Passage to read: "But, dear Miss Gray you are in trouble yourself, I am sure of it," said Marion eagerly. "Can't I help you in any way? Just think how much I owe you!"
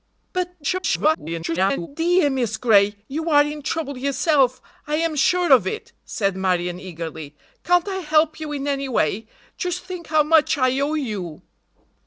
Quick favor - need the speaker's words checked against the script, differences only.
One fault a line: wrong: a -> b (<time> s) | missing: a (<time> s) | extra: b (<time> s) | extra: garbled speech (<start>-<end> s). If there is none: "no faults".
extra: garbled speech (0.6-1.9 s)